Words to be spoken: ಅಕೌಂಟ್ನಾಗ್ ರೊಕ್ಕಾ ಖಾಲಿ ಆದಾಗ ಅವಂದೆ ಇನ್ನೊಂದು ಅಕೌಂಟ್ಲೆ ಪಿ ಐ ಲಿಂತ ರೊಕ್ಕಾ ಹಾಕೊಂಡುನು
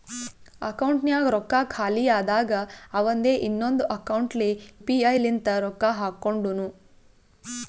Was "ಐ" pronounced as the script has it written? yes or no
yes